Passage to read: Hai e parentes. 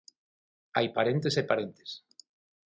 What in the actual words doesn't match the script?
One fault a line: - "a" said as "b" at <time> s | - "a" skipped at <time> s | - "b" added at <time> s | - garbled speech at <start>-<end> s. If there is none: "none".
- "parentes" added at 0.9 s